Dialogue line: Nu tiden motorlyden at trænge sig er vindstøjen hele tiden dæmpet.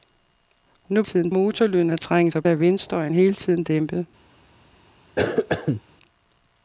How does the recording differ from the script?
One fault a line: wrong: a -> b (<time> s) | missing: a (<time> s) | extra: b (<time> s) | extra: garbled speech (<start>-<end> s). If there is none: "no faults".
no faults